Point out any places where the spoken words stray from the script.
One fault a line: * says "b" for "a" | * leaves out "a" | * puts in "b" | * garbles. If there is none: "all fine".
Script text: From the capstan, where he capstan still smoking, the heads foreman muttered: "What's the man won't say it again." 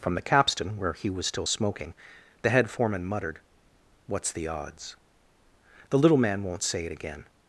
* says "was" for "capstan"
* says "head" for "heads"
* puts in "odds The little"